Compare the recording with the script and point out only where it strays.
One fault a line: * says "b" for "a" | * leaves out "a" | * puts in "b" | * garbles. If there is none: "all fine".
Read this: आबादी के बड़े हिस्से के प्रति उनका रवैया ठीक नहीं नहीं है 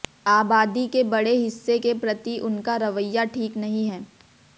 * leaves out "नहीं"